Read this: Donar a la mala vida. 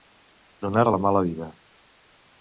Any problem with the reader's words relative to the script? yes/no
no